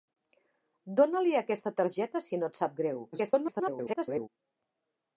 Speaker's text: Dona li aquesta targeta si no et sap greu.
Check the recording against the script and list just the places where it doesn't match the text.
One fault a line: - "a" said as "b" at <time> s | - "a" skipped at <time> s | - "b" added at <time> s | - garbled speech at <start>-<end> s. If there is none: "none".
- garbled speech at 3.1-4.3 s